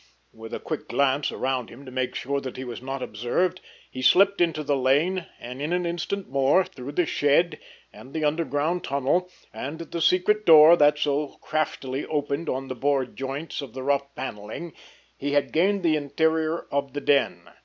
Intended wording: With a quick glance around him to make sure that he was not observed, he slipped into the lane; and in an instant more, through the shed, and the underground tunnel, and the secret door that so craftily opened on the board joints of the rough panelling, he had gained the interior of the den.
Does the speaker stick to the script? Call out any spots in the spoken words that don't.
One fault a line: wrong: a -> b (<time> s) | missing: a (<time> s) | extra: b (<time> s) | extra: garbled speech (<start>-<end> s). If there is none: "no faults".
no faults